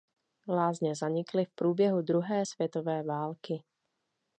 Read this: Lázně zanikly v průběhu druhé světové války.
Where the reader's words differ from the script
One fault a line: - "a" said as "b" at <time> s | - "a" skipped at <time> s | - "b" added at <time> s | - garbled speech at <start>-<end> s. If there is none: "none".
none